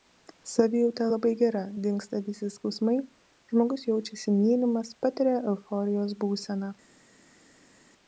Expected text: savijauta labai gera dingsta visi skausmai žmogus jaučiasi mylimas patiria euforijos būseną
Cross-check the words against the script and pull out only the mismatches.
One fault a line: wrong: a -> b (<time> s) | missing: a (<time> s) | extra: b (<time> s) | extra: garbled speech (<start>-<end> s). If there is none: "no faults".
no faults